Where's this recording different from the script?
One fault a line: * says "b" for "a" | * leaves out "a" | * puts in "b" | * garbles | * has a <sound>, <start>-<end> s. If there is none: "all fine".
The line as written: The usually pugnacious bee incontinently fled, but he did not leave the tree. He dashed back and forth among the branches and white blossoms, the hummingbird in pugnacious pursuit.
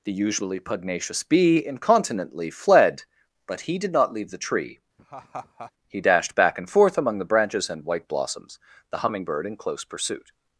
* has a laugh, 5.0-5.7 s
* says "close" for "pugnacious"